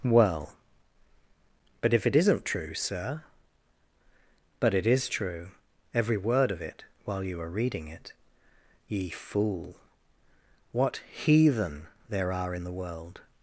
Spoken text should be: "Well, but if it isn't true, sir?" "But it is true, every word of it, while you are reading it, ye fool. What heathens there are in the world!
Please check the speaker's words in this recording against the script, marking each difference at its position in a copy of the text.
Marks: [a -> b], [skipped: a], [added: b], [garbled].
"Well, but if it isn't true, sir?" "But it is true, every word of it, while you are reading it, ye fool. What [heathens -> heathen] there are in the world!